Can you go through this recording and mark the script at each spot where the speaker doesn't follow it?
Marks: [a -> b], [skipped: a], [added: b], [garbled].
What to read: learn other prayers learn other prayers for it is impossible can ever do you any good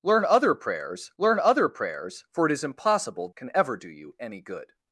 learn other prayers learn other prayers for it is impossible can ever do you any good